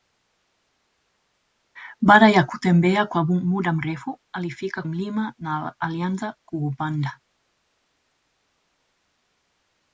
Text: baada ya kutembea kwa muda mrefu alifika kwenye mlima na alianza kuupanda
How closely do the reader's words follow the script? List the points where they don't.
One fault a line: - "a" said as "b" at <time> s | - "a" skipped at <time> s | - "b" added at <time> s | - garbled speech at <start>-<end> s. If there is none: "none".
- "kwenye" skipped at 4.8 s